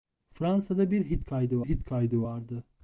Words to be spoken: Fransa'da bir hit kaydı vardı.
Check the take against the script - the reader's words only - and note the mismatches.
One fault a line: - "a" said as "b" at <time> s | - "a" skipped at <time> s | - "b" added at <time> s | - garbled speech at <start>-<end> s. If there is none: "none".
- "hit kaydı" added at 1.6 s